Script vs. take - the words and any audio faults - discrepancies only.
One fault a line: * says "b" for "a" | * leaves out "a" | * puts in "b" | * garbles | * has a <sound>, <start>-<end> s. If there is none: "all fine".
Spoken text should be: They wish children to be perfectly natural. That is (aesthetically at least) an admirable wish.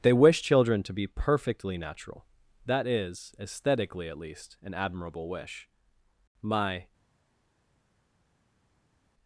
* puts in "My"